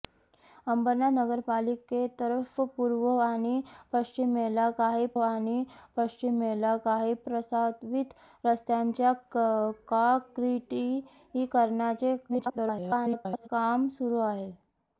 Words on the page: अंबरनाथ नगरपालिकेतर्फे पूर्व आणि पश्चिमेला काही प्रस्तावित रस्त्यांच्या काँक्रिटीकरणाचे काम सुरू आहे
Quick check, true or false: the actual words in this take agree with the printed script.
false